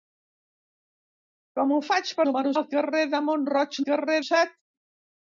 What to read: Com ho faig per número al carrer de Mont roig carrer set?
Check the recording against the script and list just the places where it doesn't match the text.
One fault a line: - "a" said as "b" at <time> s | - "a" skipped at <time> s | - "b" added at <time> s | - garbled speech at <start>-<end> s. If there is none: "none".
none